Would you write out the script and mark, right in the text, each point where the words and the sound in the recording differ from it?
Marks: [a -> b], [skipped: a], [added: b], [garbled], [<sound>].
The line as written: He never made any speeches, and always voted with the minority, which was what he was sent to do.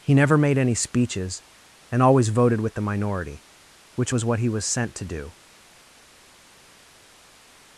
He never made any speeches, and always voted with the minority, which was what he was sent to do.